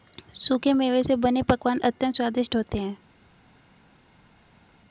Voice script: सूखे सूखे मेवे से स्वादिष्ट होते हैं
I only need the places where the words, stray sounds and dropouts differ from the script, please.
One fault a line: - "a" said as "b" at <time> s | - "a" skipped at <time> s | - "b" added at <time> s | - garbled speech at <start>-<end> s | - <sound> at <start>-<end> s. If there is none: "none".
- "सूखे" skipped at 0.7 s
- "बने पकवान अत्यंत" added at 1.2 s